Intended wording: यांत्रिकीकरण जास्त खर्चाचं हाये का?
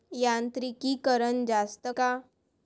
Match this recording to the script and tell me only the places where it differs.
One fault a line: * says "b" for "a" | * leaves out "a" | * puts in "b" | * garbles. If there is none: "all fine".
* leaves out "खर्चाचं हाये"